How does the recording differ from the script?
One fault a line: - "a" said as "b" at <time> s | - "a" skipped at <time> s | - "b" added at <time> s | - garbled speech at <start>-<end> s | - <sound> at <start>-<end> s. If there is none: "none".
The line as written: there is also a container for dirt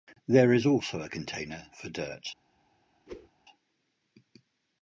- whoosh at 3.1-3.3 s